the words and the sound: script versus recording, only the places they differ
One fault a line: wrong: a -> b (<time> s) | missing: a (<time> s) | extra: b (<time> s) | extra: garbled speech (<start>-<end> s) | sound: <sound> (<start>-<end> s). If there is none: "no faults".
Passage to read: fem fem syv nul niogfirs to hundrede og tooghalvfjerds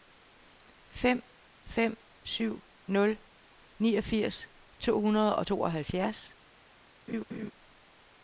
sound: laugh (7.1-7.5 s)